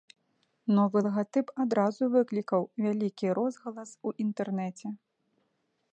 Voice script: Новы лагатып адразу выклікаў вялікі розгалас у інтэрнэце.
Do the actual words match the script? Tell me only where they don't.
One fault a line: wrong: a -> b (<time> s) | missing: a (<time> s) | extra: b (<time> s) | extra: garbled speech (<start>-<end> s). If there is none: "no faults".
no faults